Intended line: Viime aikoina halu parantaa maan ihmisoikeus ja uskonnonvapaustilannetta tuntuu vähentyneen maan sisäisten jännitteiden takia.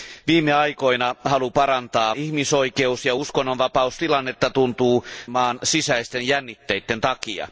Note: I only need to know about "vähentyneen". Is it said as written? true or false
false